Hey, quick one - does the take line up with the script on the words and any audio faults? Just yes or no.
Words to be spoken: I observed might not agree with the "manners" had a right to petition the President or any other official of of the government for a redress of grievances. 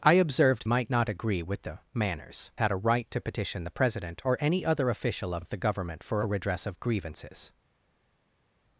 yes